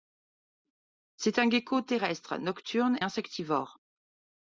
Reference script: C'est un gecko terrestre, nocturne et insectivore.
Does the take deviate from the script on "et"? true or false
true